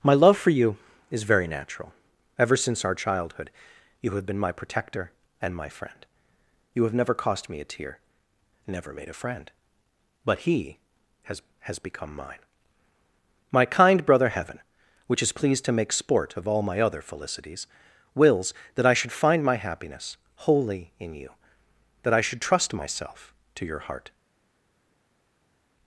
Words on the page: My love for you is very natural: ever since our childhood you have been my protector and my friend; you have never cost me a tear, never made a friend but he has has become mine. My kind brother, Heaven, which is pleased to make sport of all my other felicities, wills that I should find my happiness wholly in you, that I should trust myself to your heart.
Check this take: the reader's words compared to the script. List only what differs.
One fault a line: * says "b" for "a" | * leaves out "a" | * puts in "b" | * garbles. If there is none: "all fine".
all fine